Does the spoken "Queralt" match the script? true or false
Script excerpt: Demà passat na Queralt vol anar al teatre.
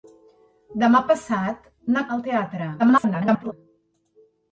false